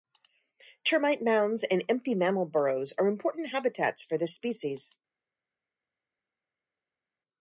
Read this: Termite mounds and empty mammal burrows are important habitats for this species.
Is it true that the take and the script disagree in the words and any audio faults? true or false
false